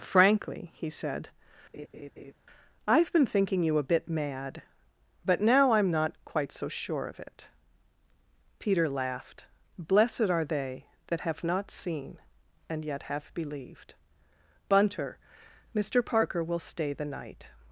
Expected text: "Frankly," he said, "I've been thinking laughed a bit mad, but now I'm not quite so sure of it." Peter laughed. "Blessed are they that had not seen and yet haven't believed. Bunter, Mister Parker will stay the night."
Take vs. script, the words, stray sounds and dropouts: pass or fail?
fail